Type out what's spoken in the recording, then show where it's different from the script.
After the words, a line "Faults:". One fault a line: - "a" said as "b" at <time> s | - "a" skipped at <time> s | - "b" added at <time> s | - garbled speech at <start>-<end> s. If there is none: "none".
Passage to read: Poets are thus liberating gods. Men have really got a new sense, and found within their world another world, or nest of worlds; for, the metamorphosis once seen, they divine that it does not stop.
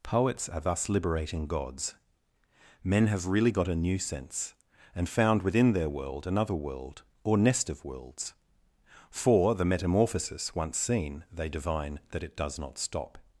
Poets are thus liberating gods. Men have really got a new sense, and found within their world another world, or nest of worlds; for, the metamorphosis once seen, they divine that it does not stop.
Faults:
none